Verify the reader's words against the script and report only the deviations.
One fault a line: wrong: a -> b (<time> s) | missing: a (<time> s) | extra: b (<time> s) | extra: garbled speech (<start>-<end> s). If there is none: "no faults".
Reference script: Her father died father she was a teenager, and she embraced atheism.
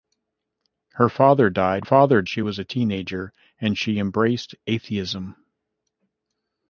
no faults